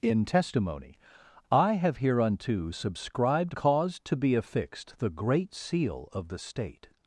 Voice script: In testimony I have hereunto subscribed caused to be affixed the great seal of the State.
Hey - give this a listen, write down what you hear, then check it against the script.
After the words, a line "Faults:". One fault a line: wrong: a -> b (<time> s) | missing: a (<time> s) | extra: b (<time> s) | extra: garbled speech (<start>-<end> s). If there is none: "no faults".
In testimony I have hereunto subscribed caused to be affixed the great seal of the State.
Faults:
no faults